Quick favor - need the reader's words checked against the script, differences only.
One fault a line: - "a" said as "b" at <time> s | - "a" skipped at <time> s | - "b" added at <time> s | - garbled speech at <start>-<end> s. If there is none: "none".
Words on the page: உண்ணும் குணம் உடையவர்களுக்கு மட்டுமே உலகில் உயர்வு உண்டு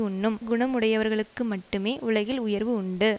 none